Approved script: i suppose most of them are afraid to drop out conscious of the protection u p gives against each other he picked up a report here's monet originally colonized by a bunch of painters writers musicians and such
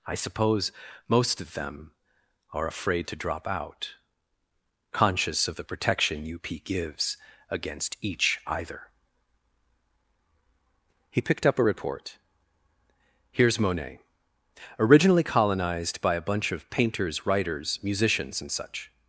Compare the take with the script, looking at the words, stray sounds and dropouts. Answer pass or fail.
fail